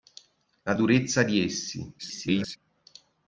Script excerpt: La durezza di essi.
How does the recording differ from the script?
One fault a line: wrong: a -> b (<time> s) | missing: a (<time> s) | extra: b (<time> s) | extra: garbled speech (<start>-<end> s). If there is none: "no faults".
extra: garbled speech (2.0-2.6 s)